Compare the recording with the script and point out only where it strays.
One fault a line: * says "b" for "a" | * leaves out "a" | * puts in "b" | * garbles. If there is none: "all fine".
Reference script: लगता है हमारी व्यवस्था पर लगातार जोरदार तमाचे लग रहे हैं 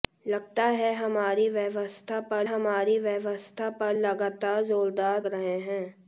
* puts in "हमारी व्यवस्था पर"
* leaves out "तमाचे लग"